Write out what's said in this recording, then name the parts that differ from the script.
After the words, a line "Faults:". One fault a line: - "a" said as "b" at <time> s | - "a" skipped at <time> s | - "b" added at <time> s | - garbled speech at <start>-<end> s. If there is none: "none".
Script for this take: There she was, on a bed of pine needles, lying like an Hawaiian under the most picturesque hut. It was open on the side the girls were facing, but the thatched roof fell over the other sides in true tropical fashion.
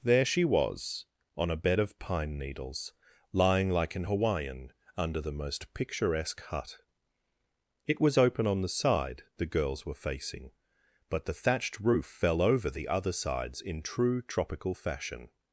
There she was, on a bed of pine needles, lying like an Hawaiian under the most picturesque hut. It was open on the side the girls were facing, but the thatched roof fell over the other sides in true tropical fashion.
Faults:
none